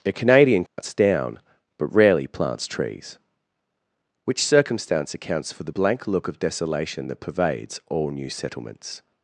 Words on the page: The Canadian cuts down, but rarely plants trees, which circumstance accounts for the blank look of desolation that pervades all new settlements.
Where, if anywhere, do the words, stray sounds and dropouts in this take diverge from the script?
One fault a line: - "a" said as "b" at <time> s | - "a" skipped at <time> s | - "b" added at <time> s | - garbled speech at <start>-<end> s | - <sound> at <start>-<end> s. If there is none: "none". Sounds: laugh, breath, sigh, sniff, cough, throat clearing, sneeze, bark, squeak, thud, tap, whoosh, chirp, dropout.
- "The" said as "A" at 0.0 s
- dropout at 0.7-0.8 s